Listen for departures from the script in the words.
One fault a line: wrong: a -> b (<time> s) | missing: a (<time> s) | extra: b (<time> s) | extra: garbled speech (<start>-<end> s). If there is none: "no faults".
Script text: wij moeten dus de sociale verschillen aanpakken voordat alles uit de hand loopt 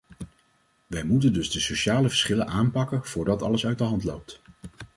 no faults